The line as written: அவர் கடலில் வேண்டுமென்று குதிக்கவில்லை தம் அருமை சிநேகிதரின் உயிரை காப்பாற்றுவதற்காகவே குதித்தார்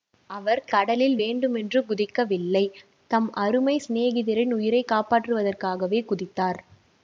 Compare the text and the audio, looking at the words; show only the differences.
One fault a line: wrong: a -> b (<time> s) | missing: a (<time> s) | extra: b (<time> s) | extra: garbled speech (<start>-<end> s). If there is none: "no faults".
no faults